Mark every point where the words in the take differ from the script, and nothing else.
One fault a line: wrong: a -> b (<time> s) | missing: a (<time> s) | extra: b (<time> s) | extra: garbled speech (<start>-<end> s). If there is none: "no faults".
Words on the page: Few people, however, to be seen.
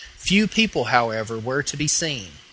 extra: were (1.4 s)